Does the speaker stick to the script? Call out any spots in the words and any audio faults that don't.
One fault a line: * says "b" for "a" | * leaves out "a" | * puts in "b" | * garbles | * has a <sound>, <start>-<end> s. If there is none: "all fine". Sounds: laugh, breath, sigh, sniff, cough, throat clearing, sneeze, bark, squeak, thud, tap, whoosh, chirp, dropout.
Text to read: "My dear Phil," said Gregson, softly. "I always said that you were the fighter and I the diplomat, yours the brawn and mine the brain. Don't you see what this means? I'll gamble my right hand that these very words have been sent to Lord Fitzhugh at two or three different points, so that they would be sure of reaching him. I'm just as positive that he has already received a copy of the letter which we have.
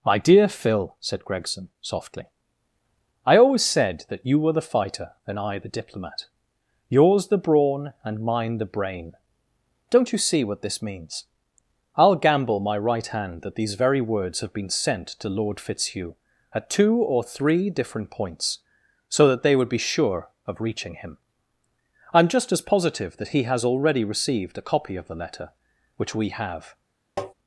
* has a tap, 27.2-27.3 s